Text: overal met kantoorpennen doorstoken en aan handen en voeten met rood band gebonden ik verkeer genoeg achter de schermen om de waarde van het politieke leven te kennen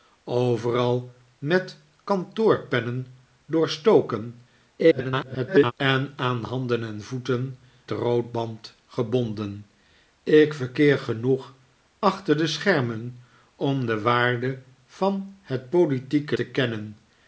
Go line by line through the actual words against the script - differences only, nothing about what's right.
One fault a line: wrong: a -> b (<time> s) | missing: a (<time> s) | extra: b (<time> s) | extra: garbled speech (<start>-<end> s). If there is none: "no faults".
extra: garbled speech (4.8-5.7 s)
missing: met (7.6 s)
missing: leven (16.4 s)